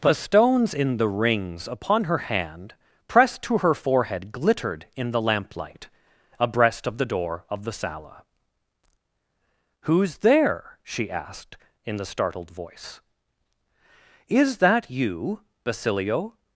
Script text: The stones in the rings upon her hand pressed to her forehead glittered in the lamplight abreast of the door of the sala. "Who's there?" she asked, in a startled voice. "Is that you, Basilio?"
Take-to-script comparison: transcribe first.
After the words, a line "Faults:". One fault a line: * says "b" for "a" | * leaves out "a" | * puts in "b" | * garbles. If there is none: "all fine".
The stones in the rings upon her hand pressed to her forehead glittered in the lamplight abreast of the door of the sala. "Who's there?" she asked, in the startled voice. "Is that you, Basilio?"
Faults:
* says "the" for "a"